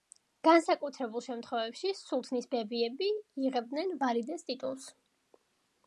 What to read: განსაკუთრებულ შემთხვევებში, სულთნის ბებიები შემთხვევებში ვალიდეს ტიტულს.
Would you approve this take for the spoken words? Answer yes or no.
no